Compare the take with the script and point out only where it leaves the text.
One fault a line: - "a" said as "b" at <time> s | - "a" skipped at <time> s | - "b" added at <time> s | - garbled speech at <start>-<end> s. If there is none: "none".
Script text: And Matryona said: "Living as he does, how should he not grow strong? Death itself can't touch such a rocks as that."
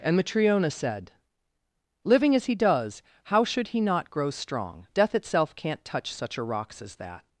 none